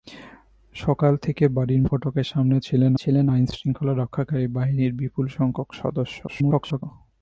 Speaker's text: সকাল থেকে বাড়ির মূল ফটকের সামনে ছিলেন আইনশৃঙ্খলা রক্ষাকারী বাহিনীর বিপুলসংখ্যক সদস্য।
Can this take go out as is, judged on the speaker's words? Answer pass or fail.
fail